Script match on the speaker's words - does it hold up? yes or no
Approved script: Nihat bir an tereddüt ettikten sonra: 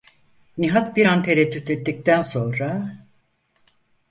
yes